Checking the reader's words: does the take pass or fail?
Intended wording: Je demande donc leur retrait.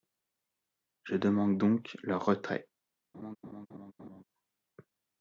pass